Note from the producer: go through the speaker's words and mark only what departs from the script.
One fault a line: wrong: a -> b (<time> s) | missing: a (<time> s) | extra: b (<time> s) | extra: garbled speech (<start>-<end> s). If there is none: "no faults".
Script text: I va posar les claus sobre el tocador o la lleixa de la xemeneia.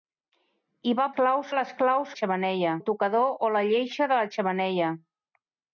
wrong: posar -> claus (1.2 s)
wrong: sobre -> xemeneia (2.2 s)